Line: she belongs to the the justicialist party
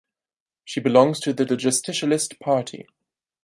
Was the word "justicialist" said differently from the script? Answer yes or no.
no